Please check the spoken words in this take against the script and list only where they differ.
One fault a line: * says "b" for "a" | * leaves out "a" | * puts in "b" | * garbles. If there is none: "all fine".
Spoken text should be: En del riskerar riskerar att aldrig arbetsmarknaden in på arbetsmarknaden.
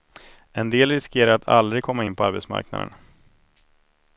* leaves out "riskerar"
* says "komma" for "arbetsmarknaden"